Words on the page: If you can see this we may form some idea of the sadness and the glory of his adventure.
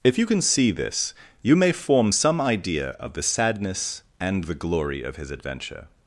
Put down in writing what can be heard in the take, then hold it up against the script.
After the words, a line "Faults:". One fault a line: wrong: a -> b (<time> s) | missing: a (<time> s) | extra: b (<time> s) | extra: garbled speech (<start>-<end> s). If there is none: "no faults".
If you can see this you may form some idea of the sadness and the glory of his adventure.
Faults:
wrong: we -> you (1.4 s)